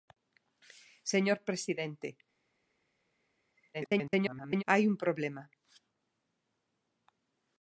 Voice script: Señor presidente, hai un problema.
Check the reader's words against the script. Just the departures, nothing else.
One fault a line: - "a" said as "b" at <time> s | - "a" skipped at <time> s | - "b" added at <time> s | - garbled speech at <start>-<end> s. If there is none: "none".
- garbled speech at 3.7-4.6 s